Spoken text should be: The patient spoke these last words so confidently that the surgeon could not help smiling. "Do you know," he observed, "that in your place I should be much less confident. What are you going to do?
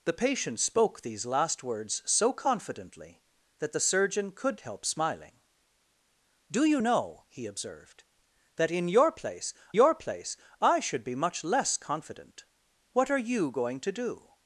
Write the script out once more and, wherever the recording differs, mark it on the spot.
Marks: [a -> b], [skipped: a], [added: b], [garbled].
The patient spoke these last words so confidently that the surgeon could [skipped: not] help smiling. "Do you know," he observed, "that in your place [added: your place] I should be much less confident. What are you going to do?